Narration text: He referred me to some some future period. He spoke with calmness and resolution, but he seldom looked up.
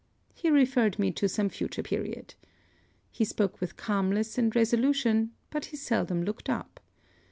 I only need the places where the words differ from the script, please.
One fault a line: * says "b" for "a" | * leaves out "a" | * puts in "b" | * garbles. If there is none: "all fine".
* leaves out "some"